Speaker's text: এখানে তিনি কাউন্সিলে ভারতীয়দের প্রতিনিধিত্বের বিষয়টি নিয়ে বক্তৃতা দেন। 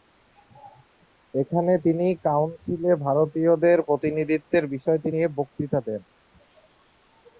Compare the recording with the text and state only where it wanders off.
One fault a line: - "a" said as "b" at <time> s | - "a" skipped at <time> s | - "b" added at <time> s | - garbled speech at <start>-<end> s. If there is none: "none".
none